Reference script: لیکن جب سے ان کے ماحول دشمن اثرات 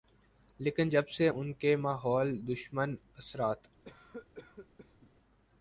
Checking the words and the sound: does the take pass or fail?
fail